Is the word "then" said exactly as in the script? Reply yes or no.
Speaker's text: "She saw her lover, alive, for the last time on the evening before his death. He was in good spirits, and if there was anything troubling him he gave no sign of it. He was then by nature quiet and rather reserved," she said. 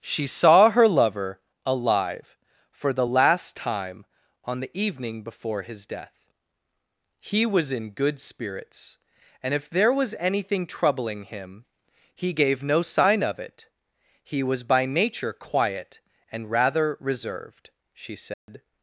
no